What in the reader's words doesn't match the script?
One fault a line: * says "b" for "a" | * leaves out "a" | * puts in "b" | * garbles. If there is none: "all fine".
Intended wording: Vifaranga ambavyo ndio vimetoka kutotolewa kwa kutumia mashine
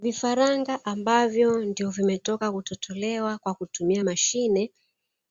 all fine